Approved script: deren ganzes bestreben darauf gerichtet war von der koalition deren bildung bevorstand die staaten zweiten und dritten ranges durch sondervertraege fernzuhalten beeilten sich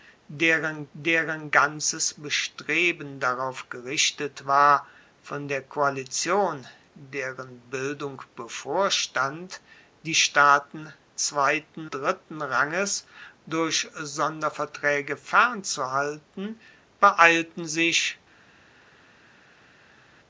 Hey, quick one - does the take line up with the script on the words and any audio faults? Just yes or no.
no